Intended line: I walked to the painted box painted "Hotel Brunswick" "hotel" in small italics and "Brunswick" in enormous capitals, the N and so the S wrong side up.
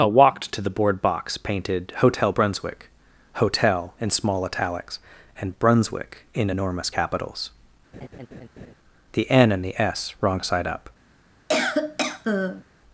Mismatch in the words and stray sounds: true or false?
true